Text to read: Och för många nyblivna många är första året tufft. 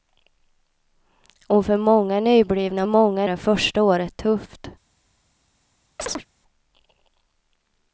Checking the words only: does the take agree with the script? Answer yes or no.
yes